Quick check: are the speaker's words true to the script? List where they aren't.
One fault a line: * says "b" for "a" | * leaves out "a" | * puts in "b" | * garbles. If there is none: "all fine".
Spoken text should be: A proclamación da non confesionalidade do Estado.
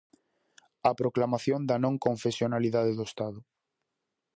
all fine